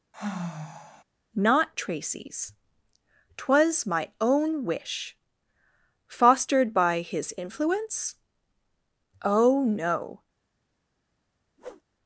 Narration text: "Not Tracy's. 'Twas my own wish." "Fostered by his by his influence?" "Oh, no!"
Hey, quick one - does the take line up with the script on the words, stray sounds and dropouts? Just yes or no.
no